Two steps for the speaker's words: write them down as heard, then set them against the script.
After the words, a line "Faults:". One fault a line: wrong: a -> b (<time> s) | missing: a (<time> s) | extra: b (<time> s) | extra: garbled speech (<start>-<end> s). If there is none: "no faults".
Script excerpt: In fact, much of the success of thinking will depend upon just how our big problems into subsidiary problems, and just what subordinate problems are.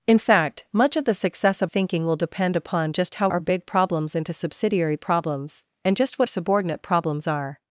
In fact, much of the success of thinking will depend upon just how our big problems into subsidiary problems, and just what subordinate problems are.
Faults:
no faults